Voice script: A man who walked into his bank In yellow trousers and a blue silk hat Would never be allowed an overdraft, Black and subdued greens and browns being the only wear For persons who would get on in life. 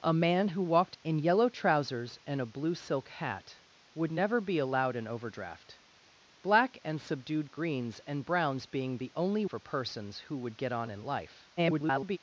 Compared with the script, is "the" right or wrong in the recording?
right